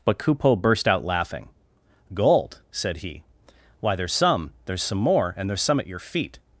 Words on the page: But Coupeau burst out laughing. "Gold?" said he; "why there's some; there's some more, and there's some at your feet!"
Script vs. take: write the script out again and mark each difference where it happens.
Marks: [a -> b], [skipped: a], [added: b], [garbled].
But Coupeau burst out laughing. "Gold?" said he; "why there's some; there's some more, and there's some at your feet!"